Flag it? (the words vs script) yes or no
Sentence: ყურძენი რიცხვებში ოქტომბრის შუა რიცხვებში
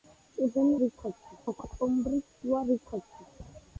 no